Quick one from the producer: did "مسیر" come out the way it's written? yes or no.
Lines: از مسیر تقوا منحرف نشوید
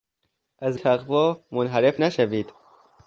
no